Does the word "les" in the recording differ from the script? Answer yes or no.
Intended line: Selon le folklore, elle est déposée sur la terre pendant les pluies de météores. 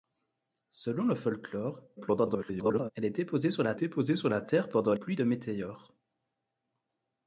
yes